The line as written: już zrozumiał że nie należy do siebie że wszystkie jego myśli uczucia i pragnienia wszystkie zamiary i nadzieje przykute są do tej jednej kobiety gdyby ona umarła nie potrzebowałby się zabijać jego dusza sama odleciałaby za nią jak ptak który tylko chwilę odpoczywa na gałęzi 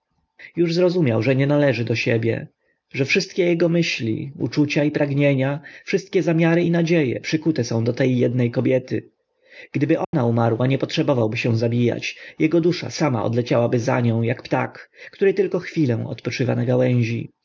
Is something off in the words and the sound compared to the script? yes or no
yes